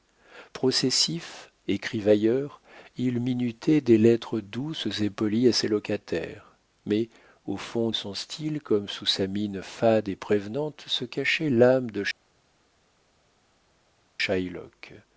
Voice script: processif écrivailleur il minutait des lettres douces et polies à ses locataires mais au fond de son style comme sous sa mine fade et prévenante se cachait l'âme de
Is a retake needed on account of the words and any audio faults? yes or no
yes